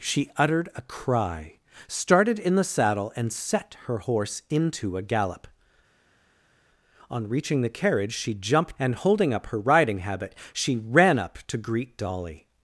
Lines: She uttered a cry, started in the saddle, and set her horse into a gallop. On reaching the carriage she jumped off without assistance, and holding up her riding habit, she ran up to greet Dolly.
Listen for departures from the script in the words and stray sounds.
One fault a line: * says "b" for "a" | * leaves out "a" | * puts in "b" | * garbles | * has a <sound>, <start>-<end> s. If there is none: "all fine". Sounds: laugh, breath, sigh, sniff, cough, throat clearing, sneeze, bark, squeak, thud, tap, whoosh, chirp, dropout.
* leaves out "off without assistance"